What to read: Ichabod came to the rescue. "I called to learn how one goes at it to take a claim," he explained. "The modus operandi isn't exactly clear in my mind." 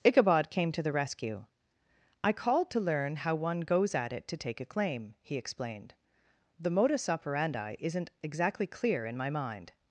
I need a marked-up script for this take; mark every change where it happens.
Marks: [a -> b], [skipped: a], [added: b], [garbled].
Ichabod came to the rescue. "I called to learn how one goes at it to take a claim," he explained. "The modus operandi isn't exactly clear in my mind."